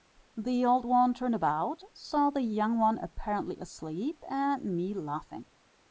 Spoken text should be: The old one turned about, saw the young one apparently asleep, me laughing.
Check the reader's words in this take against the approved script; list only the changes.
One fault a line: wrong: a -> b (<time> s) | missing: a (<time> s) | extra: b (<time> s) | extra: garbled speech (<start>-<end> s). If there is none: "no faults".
extra: and (4.3 s)